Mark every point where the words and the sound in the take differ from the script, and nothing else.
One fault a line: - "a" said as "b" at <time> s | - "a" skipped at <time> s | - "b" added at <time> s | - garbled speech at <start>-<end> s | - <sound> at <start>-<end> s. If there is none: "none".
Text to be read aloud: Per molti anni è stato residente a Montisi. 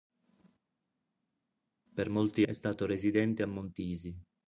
- "anni" skipped at 2.5 s